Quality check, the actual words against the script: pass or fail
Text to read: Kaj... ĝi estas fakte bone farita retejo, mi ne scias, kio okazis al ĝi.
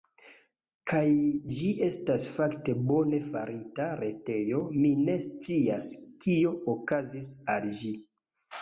pass